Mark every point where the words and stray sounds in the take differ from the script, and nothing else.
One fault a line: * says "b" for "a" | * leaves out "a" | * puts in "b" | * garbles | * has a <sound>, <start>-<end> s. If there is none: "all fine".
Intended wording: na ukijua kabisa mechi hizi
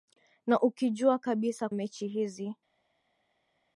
all fine